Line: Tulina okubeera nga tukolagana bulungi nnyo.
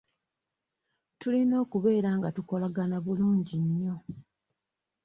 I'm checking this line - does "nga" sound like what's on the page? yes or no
yes